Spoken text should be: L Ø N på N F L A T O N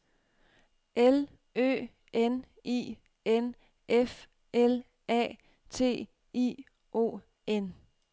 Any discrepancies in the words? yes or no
yes